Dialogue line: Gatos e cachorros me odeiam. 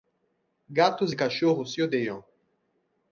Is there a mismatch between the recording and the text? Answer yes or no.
yes